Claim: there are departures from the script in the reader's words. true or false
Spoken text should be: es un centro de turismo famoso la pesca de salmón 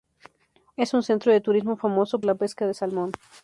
false